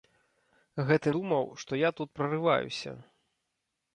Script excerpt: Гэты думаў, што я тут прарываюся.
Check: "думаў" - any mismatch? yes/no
no